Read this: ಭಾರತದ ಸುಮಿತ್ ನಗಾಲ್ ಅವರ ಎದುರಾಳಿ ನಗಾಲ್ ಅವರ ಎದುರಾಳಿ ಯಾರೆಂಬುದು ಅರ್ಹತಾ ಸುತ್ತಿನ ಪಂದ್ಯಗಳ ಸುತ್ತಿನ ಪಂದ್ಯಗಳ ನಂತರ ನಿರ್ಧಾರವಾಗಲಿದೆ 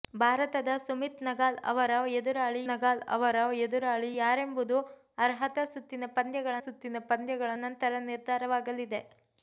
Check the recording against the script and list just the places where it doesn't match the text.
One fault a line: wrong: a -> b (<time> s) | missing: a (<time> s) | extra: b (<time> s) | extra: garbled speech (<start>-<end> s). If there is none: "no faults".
no faults